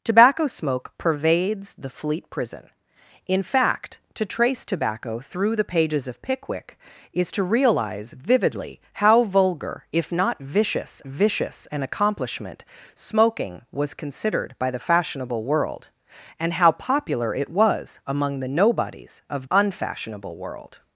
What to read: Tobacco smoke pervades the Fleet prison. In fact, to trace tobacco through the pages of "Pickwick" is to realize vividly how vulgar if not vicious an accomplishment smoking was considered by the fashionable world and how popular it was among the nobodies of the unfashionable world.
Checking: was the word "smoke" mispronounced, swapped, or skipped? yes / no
no